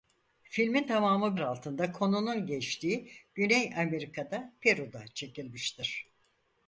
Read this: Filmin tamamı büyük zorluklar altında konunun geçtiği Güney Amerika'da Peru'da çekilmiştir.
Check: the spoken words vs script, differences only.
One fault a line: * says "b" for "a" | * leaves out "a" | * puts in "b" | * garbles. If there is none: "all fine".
* leaves out "büyük zorluklar"